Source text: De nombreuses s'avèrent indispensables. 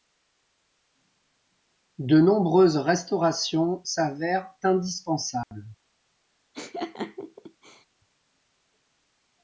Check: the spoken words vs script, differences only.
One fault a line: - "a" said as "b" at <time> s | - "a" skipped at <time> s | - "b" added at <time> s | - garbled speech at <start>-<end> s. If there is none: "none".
- "restaurations" added at 2.8 s